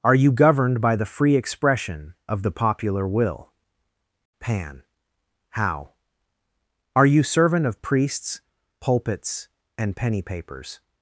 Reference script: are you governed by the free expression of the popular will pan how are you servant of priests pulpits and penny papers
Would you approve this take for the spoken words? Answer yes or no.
yes